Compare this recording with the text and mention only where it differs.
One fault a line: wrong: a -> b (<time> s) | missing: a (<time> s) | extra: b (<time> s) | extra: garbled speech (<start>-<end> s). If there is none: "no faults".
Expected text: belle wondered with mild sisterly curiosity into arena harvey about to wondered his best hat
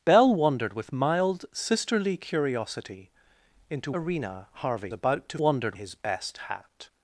no faults